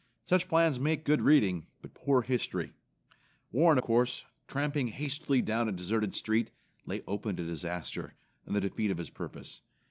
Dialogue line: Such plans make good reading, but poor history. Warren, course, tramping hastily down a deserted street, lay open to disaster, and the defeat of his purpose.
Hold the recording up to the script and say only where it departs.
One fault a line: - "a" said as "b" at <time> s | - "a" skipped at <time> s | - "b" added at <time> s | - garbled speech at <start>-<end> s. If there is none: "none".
none